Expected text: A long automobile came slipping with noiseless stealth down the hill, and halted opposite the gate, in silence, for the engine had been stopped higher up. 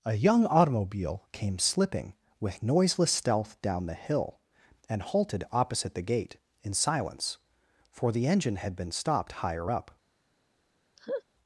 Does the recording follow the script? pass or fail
fail